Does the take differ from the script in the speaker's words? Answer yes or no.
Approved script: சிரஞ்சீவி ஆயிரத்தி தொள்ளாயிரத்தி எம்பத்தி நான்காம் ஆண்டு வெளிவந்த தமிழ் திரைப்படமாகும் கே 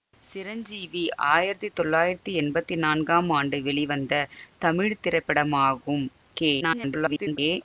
yes